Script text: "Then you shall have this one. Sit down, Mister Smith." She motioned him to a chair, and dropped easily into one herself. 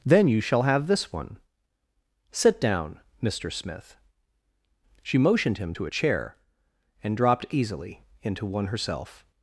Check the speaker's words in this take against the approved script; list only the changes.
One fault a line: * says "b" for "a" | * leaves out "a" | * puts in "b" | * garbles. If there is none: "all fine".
all fine